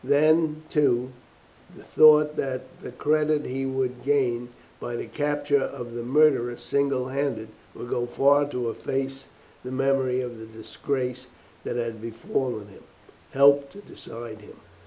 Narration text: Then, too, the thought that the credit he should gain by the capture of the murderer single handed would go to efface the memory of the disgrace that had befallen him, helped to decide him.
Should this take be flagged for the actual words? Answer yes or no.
yes